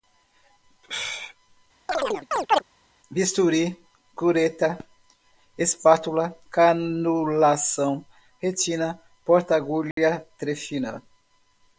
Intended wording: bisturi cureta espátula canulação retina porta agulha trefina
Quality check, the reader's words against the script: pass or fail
pass